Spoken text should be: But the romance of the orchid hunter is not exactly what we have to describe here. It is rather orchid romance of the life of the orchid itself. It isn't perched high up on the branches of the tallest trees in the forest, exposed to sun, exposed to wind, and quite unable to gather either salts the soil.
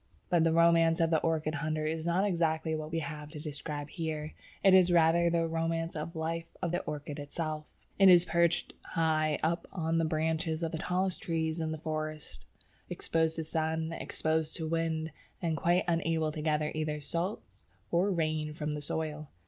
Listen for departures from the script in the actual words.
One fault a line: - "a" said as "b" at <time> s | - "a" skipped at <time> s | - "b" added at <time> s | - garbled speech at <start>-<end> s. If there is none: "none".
- "orchid" said as "the" at 5.3 s
- "isn't" said as "is" at 8.1 s
- "or rain from" added at 17.9 s